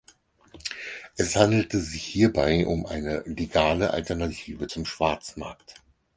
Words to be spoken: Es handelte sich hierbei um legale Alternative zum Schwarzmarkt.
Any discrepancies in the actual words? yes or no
yes